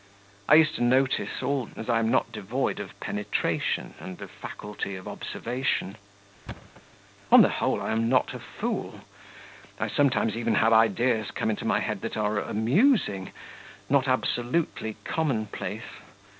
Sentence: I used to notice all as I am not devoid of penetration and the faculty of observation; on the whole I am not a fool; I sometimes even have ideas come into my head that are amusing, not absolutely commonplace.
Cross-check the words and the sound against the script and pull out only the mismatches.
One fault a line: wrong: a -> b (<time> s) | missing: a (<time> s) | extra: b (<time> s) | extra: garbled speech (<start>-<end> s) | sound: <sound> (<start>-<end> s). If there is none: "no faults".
sound: thud (6.5-6.8 s)